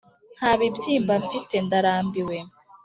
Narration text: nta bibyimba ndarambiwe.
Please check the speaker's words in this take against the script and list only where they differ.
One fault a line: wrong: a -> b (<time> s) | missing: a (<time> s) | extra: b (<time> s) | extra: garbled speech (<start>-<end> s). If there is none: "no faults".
extra: mfite (1.2 s)